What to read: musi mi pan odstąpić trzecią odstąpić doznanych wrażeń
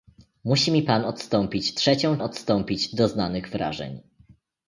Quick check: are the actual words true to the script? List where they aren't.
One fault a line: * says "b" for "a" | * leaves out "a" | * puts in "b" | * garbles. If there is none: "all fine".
all fine